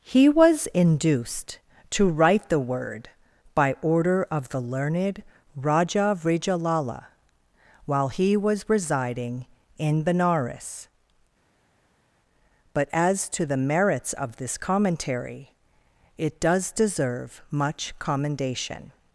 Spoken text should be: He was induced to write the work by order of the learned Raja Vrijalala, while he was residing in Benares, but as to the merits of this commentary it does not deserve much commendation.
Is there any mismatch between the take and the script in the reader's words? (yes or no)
yes